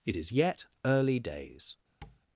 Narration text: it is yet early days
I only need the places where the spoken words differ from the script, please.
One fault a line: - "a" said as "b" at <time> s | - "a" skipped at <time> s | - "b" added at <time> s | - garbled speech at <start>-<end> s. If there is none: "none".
none